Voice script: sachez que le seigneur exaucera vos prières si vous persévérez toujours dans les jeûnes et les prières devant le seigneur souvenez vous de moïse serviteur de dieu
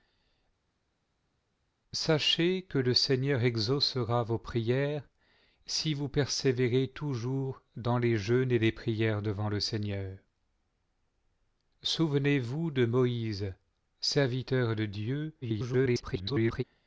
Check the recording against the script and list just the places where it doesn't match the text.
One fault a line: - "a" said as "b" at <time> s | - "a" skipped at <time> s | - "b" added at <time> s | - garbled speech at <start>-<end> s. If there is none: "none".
- garbled speech at 15.4-16.6 s